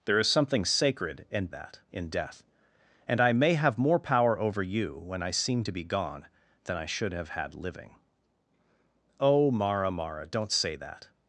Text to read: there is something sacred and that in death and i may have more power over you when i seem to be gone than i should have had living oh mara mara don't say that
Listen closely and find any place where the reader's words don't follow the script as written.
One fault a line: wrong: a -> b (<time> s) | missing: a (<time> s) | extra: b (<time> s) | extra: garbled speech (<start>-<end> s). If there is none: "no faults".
no faults